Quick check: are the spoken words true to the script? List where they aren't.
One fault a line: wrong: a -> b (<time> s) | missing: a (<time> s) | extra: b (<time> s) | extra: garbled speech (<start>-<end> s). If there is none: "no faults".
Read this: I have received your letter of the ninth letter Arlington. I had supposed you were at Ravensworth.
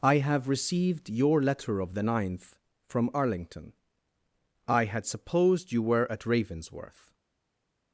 wrong: letter -> from (2.9 s)